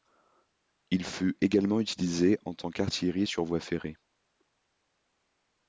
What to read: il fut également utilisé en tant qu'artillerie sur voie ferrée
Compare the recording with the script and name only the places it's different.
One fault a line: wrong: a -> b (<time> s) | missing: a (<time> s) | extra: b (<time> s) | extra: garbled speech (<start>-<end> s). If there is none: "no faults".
no faults